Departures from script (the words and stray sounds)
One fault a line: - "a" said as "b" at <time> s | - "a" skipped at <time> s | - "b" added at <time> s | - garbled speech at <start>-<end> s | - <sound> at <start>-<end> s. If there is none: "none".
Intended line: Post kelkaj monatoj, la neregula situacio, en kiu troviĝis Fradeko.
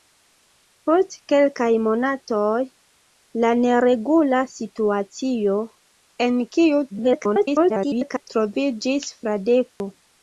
- garbled speech at 6.9-8.3 s
- dropout at 9.7-9.8 s